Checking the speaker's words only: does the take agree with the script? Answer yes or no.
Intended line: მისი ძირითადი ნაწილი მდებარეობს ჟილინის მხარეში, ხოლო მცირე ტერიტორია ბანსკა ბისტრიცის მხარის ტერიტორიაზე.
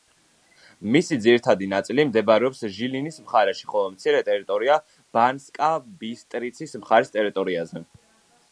yes